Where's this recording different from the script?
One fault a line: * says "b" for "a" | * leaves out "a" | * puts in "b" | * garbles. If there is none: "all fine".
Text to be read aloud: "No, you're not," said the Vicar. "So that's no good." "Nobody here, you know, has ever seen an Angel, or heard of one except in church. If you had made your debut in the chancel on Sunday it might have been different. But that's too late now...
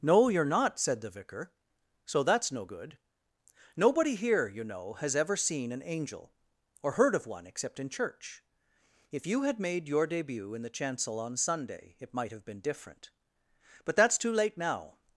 all fine